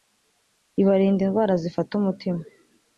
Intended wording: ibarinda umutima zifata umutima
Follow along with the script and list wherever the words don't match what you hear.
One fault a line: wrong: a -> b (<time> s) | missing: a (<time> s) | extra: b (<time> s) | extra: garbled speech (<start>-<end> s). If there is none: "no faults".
wrong: umutima -> indwara (1.2 s)